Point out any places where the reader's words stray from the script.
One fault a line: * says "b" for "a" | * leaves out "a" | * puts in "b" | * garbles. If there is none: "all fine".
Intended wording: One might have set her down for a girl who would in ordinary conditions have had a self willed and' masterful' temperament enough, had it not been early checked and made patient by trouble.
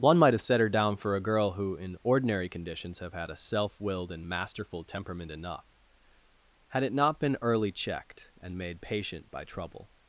* leaves out "would"